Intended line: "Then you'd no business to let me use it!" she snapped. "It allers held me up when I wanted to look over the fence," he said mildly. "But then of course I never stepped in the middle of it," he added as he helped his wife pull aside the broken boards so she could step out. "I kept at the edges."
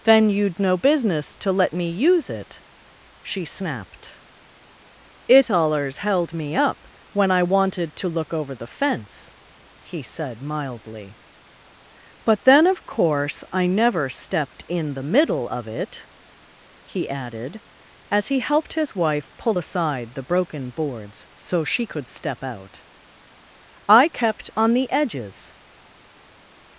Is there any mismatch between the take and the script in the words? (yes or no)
yes